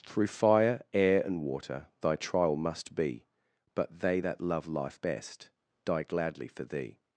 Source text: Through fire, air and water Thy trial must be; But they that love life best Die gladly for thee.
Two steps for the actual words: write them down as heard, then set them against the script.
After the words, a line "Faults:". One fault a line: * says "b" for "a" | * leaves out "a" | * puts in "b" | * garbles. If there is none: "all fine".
Through fire, air and water Thy trial must be; But they that love life best Die gladly for thee.
Faults:
all fine